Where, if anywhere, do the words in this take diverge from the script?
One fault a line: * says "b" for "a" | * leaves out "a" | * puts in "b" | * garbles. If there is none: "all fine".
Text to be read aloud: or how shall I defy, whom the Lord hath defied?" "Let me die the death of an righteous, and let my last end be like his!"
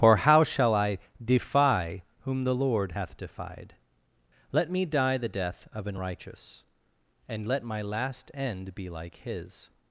all fine